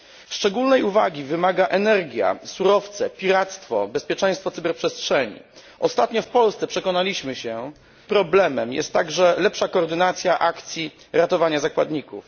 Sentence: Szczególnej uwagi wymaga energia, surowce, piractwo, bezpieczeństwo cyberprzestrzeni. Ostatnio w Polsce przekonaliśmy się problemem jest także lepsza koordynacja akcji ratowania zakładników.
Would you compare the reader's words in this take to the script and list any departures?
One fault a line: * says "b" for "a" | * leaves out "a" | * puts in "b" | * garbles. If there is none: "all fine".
all fine